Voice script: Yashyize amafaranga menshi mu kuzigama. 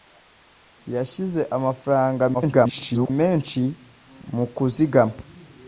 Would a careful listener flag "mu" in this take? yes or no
no